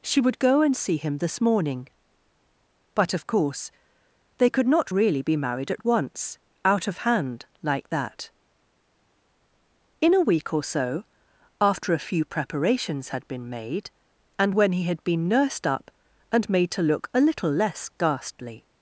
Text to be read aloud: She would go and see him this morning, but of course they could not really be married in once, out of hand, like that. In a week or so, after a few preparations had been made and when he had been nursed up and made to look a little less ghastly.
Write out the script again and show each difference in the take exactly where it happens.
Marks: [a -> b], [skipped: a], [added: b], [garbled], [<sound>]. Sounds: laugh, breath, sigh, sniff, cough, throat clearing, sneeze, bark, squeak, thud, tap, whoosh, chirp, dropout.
She would go and see him this morning, but of course they could not really be married [in -> at] once, out of hand, like that. In a week or so, after a few preparations had been made and when he had been nursed up and made to look a little less ghastly.